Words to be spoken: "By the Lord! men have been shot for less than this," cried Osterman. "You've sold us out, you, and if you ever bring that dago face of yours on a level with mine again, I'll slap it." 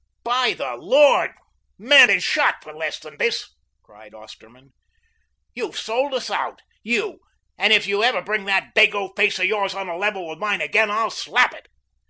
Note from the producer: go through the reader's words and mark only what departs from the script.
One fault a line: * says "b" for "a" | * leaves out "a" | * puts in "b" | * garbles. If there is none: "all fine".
* leaves out "have"